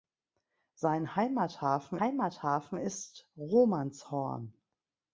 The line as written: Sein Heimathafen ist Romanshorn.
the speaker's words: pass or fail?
fail